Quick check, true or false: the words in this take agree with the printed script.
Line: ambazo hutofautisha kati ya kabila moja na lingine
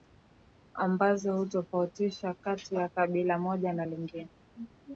true